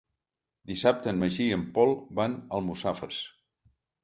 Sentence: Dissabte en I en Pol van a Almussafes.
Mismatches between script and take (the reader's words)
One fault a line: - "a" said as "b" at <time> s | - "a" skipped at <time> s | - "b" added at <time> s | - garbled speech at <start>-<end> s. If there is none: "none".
- "Magí" added at 1.2 s